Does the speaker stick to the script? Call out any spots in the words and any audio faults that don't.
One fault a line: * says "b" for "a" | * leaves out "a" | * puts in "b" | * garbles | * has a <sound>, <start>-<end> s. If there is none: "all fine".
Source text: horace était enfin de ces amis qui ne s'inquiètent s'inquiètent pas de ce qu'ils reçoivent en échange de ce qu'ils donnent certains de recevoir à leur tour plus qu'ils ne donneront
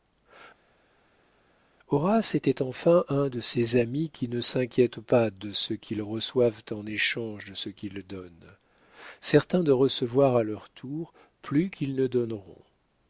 * puts in "un"
* leaves out "s'inquiètent"